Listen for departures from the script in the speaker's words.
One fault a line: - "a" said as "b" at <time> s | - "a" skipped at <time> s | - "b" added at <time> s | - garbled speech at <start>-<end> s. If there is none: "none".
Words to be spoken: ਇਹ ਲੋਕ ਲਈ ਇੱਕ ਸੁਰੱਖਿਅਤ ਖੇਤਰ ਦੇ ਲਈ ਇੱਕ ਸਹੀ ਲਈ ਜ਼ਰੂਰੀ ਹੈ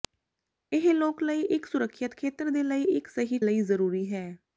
none